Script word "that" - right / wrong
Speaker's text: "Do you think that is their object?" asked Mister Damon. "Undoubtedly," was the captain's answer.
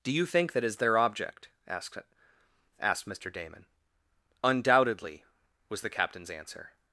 right